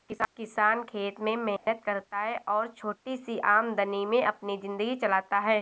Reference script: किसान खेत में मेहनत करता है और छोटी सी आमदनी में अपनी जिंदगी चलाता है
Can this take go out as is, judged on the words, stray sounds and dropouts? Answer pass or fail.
fail